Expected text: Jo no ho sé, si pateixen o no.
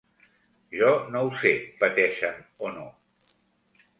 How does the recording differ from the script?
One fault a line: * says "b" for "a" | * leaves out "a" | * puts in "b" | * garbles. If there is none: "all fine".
* leaves out "si"